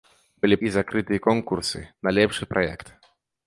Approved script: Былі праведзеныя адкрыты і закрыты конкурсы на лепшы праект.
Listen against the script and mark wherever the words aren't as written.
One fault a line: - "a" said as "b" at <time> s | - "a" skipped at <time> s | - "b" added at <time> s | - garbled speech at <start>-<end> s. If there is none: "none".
- "праведзеныя адкрыты" skipped at 0.6 s